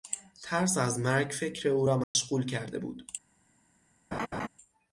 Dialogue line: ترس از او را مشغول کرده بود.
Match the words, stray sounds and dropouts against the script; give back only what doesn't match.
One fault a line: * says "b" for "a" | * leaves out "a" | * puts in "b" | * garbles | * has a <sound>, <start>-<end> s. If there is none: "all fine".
* puts in "مرگ فکر"
* has a dropout, 2.0-2.2 s
* has a laugh, 4.1-4.5 s